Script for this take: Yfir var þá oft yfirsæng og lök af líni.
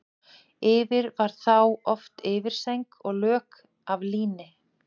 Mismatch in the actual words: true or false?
false